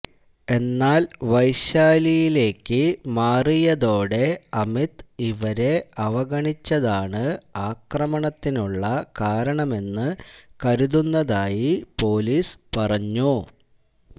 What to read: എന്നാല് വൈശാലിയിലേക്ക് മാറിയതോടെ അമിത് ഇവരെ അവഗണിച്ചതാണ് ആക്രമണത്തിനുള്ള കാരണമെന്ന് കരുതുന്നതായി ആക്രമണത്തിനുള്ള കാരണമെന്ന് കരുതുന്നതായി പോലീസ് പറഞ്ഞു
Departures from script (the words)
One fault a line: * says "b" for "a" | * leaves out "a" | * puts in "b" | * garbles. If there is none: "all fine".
* leaves out "ആക്രമണത്തിനുള്ള കാരണമെന്ന് കരുതുന്നതായി"